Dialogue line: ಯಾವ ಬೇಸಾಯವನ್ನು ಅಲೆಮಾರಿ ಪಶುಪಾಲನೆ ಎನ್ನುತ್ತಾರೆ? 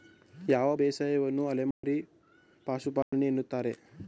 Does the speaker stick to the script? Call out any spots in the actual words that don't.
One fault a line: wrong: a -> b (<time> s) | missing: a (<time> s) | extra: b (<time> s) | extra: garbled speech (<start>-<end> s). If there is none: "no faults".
no faults